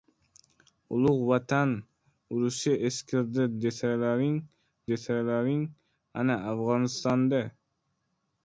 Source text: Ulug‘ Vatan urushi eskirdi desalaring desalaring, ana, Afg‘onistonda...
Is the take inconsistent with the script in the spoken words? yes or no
no